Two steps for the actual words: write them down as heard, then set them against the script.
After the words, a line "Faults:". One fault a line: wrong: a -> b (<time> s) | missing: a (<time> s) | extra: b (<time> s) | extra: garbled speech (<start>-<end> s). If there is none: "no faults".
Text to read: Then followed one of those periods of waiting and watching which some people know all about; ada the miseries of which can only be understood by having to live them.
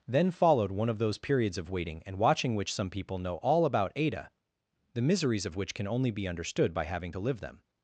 Then followed one of those periods of waiting and watching which some people know all about; ada the miseries of which can only be understood by having to live them.
Faults:
no faults